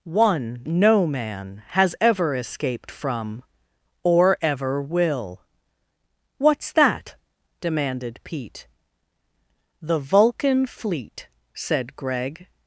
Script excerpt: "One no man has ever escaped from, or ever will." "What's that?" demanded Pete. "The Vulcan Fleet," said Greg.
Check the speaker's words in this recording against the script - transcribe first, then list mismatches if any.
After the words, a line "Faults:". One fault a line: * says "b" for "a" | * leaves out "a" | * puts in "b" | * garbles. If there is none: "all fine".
"One no man has ever escaped from, or ever will." "What's that?" demanded Pete. "The Vulcan Fleet," said Greg.
Faults:
all fine